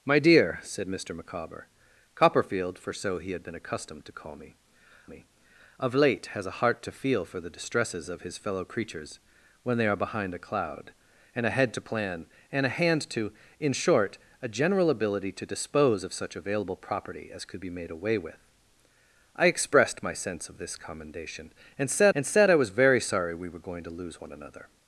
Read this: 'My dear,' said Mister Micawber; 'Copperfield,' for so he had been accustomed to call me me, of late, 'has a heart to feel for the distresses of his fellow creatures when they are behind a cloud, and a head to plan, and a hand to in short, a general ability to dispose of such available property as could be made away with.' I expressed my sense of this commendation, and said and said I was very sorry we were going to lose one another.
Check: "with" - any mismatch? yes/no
no